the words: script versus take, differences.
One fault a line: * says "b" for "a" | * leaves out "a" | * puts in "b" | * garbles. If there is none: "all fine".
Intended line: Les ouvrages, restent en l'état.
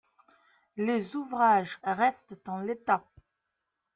all fine